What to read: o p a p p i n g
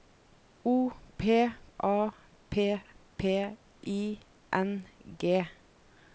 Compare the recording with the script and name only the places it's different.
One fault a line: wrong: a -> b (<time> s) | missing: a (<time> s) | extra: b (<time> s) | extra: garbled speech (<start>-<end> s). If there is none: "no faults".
no faults